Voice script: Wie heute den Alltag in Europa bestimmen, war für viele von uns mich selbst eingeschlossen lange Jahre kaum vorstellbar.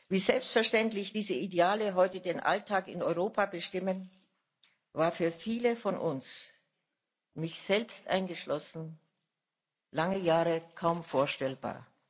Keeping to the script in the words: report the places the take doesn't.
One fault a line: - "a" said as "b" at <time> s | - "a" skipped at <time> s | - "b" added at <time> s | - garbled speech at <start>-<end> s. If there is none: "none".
- "selbstverständlich diese Ideale" added at 0.2 s